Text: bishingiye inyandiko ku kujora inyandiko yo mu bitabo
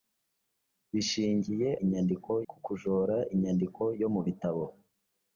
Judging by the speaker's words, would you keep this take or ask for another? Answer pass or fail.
pass